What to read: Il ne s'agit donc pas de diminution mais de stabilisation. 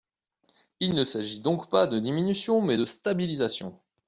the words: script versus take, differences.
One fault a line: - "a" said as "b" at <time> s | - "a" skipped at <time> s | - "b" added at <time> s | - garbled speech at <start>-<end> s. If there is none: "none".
none